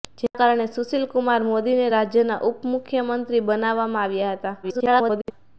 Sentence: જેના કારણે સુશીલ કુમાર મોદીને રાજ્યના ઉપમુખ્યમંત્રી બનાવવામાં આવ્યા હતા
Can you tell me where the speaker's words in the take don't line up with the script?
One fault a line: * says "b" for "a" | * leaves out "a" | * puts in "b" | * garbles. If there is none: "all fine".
* garbles